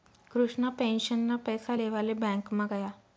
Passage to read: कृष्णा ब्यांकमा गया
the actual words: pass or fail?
fail